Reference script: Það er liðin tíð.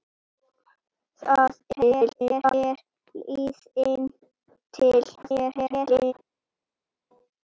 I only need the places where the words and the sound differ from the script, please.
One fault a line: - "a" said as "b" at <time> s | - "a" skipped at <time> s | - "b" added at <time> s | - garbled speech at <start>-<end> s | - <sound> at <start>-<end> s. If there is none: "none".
- garbled speech at 1.7-2.5 s
- garbled speech at 5.2-6.1 s